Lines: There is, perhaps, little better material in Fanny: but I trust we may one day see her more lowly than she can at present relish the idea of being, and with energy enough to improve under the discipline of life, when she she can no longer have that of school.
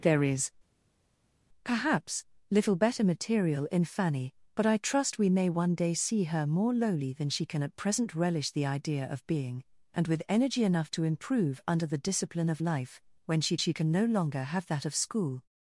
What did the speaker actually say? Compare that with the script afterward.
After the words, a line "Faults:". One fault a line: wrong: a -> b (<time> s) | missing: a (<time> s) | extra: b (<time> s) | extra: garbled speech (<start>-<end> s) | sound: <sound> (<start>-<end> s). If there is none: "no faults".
There is, perhaps, little better material in Fanny: but I trust we may one day see her more lowly than she can at present relish the idea of being, and with energy enough to improve under the discipline of life, when she she can no longer have that of school.
Faults:
no faults